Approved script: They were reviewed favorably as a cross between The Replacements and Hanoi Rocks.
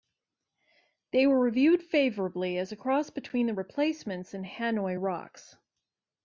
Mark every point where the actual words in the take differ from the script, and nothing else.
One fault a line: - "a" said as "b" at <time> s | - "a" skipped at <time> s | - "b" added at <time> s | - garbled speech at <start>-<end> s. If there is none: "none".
none